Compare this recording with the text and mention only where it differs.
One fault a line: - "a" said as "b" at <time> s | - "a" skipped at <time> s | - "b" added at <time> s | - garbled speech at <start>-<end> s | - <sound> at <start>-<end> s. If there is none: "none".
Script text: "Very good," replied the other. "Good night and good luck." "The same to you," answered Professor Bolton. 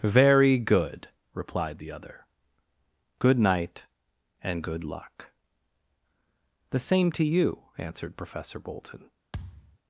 - thud at 9.3-9.8 s